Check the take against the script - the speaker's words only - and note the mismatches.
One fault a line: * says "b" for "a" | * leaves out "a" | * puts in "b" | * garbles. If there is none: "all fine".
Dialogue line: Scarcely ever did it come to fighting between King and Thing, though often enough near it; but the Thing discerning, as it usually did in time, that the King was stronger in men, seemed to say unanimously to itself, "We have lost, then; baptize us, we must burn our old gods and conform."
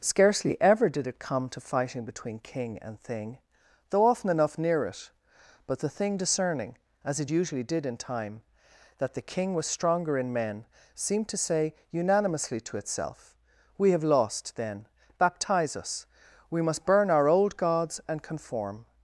all fine